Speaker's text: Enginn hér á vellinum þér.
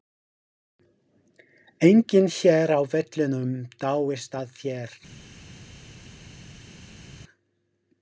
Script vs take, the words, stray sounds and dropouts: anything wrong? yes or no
yes